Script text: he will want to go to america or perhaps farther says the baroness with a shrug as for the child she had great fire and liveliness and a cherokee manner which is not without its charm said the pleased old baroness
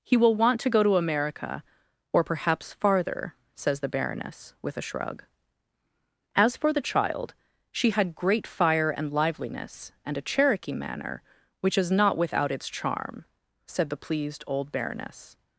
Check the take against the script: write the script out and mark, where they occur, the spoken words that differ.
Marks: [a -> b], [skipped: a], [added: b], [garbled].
he will want to go to america or perhaps farther says the baroness with a shrug as for the child she had great fire and liveliness and a cherokee manner which is not without its charm said the pleased old baroness